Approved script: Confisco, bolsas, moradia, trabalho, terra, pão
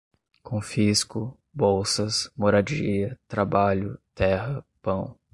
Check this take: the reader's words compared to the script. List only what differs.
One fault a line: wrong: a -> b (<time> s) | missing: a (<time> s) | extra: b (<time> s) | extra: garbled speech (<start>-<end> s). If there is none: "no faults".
no faults